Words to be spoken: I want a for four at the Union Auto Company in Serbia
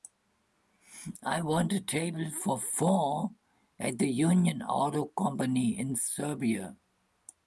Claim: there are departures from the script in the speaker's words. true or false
true